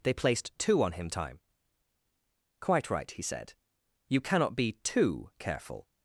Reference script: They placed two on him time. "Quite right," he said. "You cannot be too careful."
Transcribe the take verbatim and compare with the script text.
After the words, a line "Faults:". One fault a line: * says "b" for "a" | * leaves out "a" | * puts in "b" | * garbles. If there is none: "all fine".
They placed two on him time. "Quite right," he said. "You cannot be too careful."
Faults:
all fine